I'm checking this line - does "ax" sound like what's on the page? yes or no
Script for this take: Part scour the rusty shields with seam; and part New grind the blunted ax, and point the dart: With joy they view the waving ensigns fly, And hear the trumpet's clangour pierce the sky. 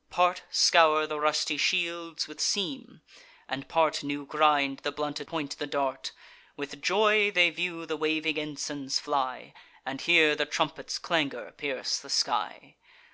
no